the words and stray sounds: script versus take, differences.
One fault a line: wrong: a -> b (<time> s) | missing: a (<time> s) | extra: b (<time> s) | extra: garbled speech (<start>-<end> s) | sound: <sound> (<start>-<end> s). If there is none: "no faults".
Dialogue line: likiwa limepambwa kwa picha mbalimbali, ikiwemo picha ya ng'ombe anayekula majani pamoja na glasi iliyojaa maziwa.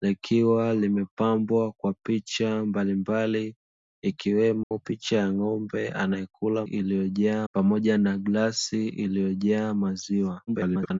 sound: dropout (4.6-4.7 s)
wrong: majani -> iliyojaa (6.6 s)
extra: garbled speech (10.5-11.0 s)